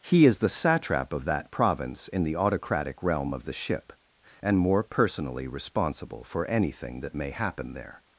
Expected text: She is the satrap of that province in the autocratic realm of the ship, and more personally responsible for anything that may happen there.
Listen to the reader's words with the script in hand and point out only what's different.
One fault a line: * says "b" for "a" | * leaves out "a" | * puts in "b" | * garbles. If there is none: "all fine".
* says "He" for "She"